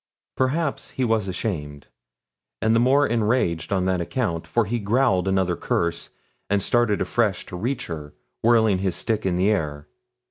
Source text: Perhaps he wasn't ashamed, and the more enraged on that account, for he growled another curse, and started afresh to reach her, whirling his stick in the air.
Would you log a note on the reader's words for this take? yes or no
yes